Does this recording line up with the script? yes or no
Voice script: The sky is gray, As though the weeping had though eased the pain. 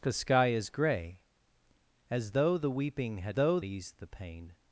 yes